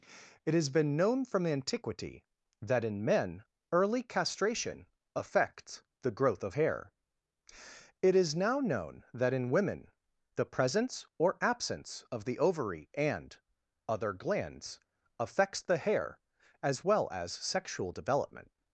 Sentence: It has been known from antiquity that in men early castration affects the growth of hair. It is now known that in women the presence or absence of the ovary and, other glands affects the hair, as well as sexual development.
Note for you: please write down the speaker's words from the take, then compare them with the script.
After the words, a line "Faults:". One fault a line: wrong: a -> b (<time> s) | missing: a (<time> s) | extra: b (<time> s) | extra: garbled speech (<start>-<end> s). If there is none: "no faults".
It has been known from antiquity that in men early castration affects the growth of hair. It is now known that in women the presence or absence of the ovary and, other glands affects the hair, as well as sexual development.
Faults:
no faults